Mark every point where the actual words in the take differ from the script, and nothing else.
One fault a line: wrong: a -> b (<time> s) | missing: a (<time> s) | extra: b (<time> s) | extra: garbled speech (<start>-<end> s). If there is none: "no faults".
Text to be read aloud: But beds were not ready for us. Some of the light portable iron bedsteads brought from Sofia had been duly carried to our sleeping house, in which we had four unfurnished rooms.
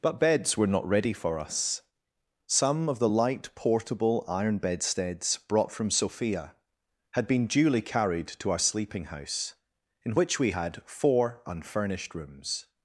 no faults